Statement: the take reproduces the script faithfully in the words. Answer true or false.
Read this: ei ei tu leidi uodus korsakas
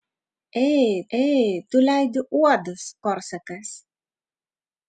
true